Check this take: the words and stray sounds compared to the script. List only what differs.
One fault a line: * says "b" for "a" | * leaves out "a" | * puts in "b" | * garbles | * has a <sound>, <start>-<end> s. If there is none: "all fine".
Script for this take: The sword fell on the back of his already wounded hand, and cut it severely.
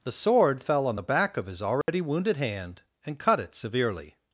* has a dropout, 1.8-1.9 s